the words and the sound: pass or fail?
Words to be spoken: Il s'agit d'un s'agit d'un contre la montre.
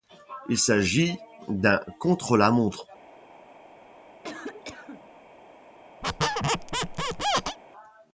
fail